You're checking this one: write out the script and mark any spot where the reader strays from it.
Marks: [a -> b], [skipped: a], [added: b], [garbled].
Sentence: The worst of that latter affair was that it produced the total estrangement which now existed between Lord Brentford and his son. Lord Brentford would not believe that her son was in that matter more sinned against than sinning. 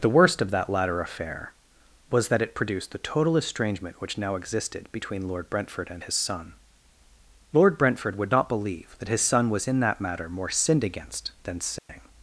The worst of that latter affair was that it produced the total estrangement which now existed between Lord Brentford and his son. Lord Brentford would not believe that [her -> his] son was in that matter more sinned against than sinning.